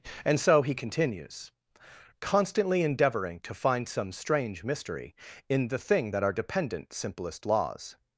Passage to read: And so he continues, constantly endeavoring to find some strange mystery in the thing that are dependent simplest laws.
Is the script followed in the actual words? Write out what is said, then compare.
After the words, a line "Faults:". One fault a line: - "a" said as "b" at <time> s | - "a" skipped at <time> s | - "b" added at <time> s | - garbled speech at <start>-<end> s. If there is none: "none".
And so he continues, constantly endeavoring to find some strange mystery in the thing that are dependent simplest laws.
Faults:
none